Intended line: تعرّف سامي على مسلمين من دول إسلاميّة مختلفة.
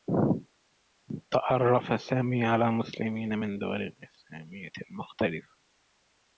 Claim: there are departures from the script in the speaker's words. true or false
false